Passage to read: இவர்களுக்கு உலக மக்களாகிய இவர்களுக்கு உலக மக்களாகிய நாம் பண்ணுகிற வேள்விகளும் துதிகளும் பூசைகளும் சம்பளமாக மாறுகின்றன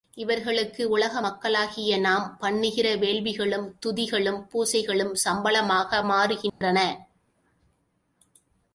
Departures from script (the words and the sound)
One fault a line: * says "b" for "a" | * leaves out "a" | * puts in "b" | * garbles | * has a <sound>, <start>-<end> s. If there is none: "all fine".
* leaves out "இவர்களுக்கு உலக மக்களாகிய"
* has a dropout, 6.5-6.6 s